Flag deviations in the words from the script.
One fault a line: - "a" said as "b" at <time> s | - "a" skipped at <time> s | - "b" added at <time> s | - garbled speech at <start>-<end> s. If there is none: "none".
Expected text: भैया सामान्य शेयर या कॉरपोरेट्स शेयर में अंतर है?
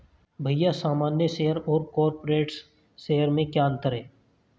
- "या" said as "और" at 1.6 s
- "क्या" added at 3.5 s